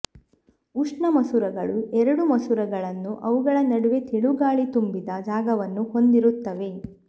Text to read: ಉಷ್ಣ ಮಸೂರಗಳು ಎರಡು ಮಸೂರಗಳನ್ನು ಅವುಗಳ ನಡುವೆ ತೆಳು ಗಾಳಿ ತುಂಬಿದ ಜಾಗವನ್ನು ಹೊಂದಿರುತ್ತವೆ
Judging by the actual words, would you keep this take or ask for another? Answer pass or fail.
pass